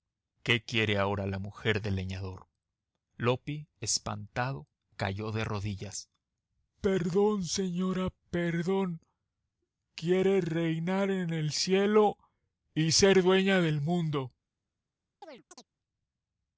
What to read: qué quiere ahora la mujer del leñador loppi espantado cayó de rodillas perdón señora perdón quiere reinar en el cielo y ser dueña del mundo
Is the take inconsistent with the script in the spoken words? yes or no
no